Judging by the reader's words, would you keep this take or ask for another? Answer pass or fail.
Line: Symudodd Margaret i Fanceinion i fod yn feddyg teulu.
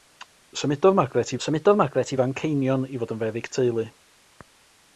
fail